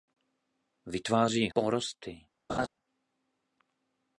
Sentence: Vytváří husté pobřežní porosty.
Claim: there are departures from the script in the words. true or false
true